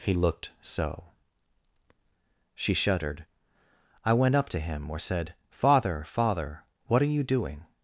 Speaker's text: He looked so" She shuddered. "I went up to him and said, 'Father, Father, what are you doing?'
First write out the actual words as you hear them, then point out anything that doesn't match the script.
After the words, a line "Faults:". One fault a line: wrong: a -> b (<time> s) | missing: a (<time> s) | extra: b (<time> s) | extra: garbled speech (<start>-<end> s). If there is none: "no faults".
He looked so" She shuddered. "I went up to him or said, 'Father, Father, what are you doing?'
Faults:
wrong: and -> or (4.9 s)